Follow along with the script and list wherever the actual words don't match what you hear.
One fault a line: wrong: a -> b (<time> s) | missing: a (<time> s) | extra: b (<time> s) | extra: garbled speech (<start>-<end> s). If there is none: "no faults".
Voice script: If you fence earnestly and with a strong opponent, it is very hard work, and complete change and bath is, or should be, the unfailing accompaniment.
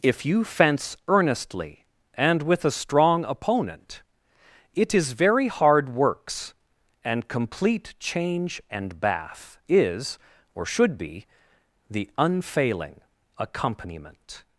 wrong: work -> works (5.9 s)